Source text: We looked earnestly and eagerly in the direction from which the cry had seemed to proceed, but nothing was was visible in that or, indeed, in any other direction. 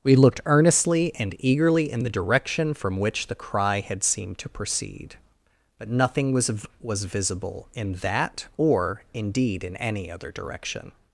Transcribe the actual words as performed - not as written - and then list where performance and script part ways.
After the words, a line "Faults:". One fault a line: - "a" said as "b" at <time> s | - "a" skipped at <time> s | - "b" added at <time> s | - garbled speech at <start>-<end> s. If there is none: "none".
We looked earnestly and eagerly in the direction from which the cry had seemed to proceed, but nothing was was visible in that or, indeed, in any other direction.
Faults:
none